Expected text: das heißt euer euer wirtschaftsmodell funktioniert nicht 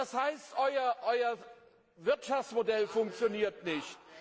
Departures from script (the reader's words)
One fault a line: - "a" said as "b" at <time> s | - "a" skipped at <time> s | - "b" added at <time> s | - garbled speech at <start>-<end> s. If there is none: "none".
- "euer" skipped at 1.4 s